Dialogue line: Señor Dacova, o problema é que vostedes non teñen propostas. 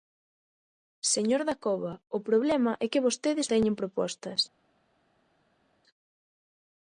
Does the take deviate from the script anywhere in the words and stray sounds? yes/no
yes